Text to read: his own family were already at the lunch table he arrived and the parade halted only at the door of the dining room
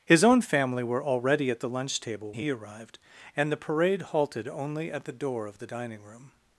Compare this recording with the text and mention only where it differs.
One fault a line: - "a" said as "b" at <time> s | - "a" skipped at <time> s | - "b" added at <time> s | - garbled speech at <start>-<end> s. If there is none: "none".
none